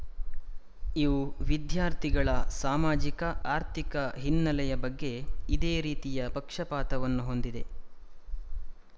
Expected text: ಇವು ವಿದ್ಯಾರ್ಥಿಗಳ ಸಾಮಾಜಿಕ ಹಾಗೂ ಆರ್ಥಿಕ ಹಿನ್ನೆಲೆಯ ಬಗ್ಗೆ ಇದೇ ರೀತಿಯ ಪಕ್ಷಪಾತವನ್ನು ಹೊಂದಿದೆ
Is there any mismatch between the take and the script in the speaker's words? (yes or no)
yes